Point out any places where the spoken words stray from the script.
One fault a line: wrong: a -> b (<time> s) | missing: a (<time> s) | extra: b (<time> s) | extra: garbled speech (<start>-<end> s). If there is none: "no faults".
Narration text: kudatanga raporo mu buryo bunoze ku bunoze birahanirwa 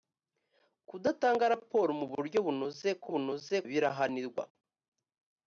no faults